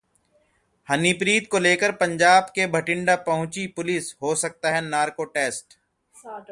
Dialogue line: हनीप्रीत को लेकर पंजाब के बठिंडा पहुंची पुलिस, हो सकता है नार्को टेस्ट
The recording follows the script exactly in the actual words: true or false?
true